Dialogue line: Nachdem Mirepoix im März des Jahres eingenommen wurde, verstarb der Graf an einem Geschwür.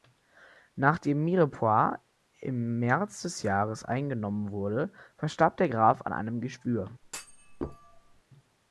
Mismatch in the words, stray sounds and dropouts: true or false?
true